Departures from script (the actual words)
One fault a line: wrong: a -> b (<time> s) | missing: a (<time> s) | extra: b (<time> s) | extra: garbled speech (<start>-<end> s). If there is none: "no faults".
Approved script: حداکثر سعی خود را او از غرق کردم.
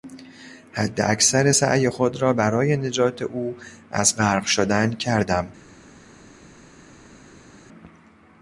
extra: برای نجات (2.3 s)
extra: شدن (4.4 s)